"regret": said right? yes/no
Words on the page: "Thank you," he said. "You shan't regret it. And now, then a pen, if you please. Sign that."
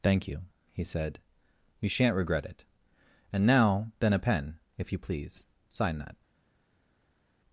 yes